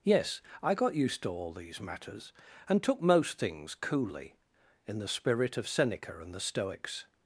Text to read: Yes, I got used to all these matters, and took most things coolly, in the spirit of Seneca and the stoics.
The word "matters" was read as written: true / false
true